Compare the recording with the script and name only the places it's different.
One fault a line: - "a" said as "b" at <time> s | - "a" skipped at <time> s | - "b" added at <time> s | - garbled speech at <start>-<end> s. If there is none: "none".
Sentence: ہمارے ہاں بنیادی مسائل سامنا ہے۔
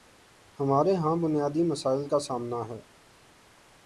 - "کا" added at 2.1 s